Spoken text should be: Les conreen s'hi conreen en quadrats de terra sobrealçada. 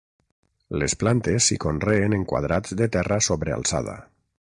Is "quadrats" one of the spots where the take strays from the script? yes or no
no